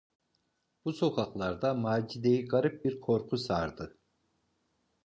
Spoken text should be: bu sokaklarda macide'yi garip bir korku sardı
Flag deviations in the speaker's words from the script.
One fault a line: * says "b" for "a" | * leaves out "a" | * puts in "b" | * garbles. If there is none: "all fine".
all fine